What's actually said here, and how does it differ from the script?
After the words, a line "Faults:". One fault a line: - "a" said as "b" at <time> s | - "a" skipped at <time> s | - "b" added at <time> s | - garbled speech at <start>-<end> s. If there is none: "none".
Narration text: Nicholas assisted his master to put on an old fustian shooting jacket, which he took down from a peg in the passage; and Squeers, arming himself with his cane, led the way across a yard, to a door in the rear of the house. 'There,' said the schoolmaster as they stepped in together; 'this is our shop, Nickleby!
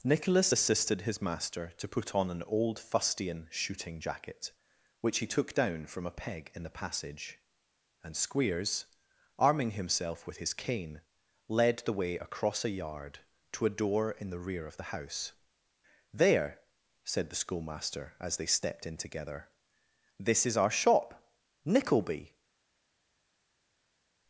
Nicholas assisted his master to put on an old fustian shooting jacket, which he took down from a peg in the passage; and Squeers, arming himself with his cane, led the way across a yard, to a door in the rear of the house. 'There,' said the schoolmaster as they stepped in together; 'this is our shop, Nickleby!
Faults:
none